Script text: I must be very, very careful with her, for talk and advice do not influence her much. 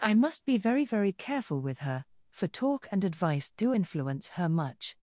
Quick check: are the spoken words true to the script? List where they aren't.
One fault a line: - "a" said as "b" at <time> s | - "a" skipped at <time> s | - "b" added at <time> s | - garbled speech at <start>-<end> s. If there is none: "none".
- "not" skipped at 3.7 s